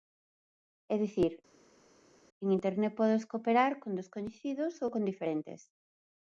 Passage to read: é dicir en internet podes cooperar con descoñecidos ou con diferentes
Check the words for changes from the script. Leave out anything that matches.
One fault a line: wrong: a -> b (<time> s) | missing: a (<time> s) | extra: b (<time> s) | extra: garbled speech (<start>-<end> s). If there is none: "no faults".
no faults